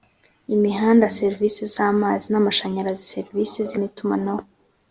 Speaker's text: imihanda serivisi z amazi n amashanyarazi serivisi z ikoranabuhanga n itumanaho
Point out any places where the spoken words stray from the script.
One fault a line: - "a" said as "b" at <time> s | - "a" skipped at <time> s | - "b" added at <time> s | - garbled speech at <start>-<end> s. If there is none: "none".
- "ikoranabuhanga" skipped at 3.7 s